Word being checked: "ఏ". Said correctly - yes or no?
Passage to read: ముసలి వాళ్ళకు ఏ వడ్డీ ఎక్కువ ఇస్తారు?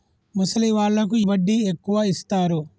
no